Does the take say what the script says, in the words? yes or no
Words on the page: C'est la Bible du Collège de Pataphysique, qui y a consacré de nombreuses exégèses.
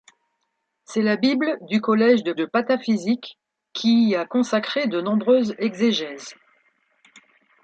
no